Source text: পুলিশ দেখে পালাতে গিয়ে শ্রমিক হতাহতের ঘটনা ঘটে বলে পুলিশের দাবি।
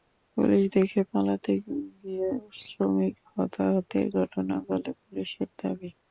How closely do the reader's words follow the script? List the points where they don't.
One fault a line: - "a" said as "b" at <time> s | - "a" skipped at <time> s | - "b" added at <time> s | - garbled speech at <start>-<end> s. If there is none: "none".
- "ঘটে" skipped at 4.5 s